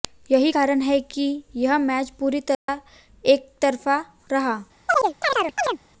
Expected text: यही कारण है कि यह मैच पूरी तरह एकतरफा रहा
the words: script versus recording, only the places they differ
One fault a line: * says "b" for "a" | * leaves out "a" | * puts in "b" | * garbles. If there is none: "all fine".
all fine